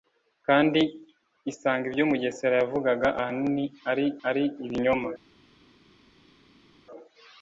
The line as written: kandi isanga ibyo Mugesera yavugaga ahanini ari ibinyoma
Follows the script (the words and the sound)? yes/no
no